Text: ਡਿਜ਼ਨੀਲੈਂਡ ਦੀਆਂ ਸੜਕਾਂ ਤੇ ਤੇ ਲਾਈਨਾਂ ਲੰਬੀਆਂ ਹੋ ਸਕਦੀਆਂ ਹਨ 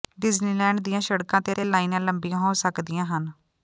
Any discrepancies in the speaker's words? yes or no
no